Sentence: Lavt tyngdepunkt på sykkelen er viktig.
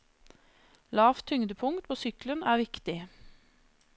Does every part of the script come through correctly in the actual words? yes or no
yes